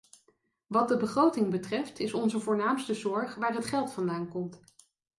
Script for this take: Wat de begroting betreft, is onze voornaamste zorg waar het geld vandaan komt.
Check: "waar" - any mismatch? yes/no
no